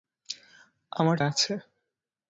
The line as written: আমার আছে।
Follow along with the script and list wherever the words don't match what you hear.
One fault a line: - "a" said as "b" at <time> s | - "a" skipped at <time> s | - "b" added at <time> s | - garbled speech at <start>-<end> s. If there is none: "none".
none